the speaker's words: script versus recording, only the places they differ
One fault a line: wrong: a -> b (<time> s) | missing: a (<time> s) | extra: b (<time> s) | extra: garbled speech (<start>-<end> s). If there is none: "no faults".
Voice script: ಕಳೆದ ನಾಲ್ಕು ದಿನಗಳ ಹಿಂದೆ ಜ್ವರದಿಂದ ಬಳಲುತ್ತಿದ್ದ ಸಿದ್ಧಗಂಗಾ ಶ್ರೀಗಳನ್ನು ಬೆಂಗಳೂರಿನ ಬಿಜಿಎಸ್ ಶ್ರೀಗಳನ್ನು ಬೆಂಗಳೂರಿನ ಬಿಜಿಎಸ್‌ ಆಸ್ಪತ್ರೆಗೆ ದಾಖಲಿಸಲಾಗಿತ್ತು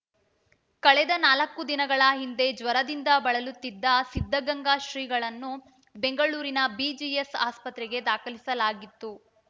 missing: ಶ್ರೀಗಳನ್ನು ಬೆಂಗಳೂರಿನ ಬಿಜಿಎಸ್ (7.3 s)